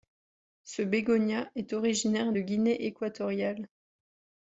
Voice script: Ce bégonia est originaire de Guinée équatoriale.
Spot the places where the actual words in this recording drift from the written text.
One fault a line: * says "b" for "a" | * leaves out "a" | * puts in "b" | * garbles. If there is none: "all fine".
all fine